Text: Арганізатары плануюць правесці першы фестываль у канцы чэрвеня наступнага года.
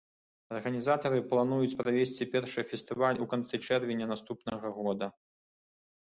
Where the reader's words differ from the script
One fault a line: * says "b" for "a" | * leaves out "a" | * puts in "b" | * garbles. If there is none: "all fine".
all fine